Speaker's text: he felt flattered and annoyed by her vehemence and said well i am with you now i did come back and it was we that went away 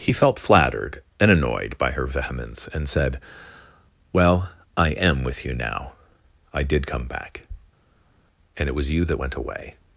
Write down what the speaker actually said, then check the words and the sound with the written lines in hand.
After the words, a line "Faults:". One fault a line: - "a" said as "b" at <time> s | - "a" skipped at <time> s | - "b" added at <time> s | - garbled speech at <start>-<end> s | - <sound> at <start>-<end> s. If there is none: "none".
he felt flattered and annoyed by her vehemence and said well i am with you now i did come back and it was you that went away
Faults:
- "we" said as "you" at 8.9 s